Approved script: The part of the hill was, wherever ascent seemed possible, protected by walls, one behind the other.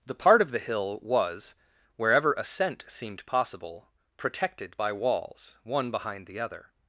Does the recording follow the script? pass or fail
pass